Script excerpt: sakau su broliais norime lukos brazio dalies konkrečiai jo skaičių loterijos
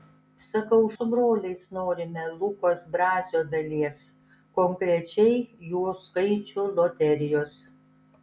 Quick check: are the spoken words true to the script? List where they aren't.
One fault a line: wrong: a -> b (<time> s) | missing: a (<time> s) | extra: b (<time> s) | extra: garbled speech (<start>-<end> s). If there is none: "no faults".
no faults